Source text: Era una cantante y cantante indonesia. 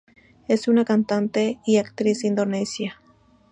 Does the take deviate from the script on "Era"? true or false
true